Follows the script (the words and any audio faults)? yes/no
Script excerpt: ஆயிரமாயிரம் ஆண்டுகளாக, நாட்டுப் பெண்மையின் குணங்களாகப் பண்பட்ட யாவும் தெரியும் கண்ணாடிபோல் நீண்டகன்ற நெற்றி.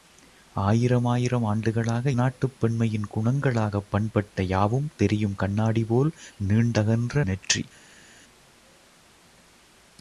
yes